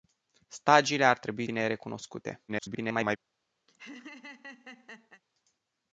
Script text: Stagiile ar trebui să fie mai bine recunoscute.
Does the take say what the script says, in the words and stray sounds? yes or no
no